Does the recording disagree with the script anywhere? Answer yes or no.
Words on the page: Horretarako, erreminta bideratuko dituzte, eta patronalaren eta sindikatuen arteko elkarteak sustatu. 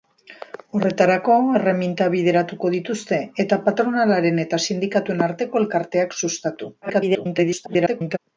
yes